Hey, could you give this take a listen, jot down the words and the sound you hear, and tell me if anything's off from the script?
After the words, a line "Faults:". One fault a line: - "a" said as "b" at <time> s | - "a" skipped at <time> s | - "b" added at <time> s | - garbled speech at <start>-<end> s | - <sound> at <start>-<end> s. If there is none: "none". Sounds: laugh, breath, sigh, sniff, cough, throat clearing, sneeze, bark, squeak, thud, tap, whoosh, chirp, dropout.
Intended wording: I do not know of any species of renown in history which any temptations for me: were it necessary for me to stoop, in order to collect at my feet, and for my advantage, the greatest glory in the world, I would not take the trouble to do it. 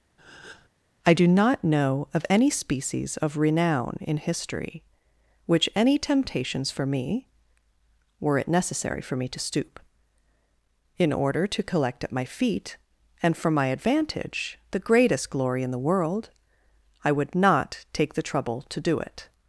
I do not know of any species of renown in history which any temptations for me: were it necessary for me to stoop, in order to collect at my feet, and for my advantage, the greatest glory in the world, I would not take the trouble to do it.
Faults:
- breath at 0.2-0.7 s